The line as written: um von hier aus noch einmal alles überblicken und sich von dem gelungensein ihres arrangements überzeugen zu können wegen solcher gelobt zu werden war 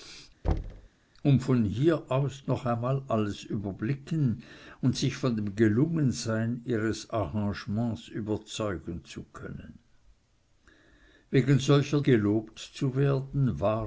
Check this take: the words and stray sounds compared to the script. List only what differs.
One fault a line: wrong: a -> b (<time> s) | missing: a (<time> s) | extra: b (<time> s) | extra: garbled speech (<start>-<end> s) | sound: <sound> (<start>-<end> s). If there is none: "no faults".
sound: thud (0.4-0.9 s)